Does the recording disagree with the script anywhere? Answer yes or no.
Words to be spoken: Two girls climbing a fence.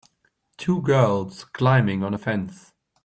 yes